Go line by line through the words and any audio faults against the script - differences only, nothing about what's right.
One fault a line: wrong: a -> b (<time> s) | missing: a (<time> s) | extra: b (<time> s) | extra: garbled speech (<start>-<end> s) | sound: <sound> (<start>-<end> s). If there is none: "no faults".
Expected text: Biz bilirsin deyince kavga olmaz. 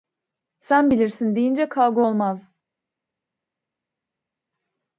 wrong: Biz -> Sen (0.6 s)